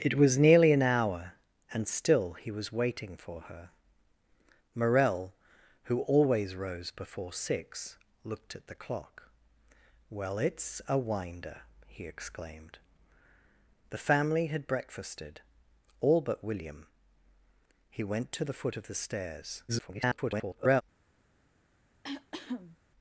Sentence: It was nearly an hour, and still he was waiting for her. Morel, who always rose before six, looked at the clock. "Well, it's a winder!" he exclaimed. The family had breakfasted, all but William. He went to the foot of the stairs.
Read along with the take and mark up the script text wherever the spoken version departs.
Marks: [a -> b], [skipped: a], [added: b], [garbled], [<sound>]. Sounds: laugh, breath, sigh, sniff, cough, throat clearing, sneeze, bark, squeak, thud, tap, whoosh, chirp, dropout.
It was nearly an hour, and still he was waiting for her. Morel, who always rose before six, looked at the clock. "Well, it's a winder!" he exclaimed. The family had breakfasted, all but William. He went to the foot of the stairs. [garbled] [cough]